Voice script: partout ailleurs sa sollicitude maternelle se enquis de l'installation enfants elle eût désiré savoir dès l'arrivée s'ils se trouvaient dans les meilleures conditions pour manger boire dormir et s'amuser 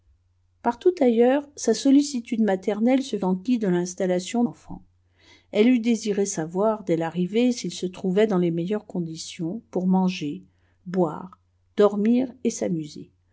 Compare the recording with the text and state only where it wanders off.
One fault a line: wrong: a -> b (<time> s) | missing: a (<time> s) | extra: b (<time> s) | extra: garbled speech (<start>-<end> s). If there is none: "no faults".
no faults